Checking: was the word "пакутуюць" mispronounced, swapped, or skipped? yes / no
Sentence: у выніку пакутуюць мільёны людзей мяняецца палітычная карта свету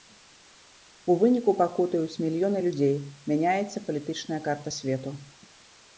no